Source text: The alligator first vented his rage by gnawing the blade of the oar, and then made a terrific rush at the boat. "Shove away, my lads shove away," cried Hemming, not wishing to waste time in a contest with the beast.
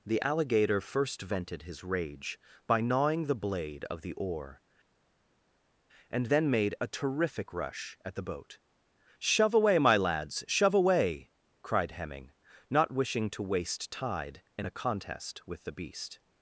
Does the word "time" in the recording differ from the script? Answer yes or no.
yes